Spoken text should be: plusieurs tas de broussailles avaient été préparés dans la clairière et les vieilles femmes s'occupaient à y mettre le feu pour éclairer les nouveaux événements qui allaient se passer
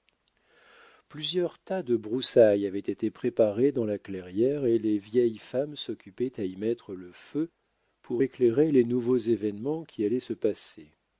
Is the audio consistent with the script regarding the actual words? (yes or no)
yes